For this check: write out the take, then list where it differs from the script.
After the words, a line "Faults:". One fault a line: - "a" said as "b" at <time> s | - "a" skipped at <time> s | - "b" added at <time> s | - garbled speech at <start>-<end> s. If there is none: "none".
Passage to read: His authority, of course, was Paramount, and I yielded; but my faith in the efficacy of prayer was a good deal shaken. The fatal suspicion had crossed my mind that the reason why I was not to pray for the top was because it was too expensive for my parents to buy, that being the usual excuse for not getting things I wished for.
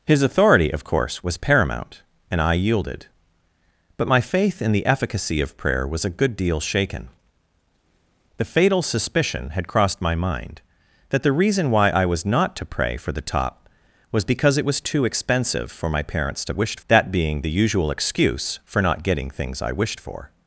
His authority, of course, was Paramount, and I yielded; but my faith in the efficacy of prayer was a good deal shaken. The fatal suspicion had crossed my mind that the reason why I was not to pray for the top was because it was too expensive for my parents to wished, that being the usual excuse for not getting things I wished for.
Faults:
- "buy" said as "wished" at 16.5 s